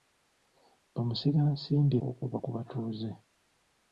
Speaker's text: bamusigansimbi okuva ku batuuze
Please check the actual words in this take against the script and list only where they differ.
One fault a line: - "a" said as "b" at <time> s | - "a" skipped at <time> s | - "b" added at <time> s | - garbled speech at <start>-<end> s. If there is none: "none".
none